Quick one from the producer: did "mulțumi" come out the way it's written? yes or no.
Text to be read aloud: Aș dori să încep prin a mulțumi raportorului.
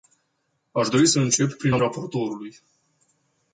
no